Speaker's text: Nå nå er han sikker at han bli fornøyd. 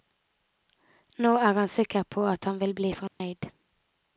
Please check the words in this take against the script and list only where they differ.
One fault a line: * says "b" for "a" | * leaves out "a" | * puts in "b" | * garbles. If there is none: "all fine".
* leaves out "nå"
* puts in "på"
* puts in "vil"